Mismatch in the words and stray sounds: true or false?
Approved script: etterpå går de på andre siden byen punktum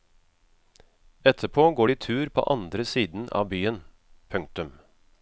true